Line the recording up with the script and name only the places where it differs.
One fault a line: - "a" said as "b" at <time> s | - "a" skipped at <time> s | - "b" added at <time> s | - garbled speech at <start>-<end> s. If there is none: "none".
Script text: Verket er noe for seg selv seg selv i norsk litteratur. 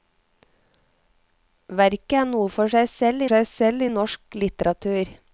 none